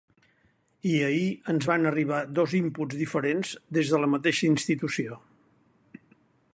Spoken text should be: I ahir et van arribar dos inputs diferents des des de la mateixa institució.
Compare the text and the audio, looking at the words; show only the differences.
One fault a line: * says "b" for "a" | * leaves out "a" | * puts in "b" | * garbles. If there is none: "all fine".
* says "ens" for "et"
* leaves out "des"